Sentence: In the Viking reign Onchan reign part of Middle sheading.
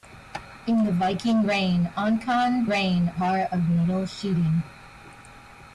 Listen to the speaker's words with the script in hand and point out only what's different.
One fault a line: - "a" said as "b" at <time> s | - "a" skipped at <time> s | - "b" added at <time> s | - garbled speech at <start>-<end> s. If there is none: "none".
none